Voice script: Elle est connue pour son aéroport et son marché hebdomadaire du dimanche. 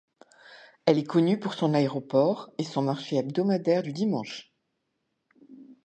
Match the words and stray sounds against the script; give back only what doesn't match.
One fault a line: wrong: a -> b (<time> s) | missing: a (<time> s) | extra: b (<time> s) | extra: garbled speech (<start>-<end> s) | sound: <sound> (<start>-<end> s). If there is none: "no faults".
no faults